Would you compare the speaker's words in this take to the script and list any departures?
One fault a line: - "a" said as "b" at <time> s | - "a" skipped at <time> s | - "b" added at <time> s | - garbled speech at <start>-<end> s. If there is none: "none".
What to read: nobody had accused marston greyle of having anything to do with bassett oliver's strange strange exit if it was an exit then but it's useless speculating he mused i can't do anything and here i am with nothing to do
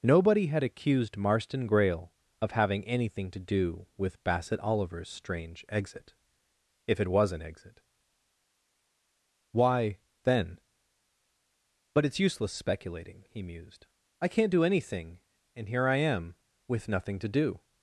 - "strange" skipped at 5.6 s
- "why" added at 9.5 s